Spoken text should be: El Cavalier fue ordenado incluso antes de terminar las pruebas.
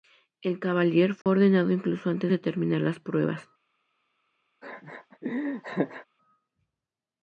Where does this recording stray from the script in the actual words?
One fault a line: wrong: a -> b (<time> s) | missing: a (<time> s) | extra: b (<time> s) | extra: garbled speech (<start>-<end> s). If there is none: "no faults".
no faults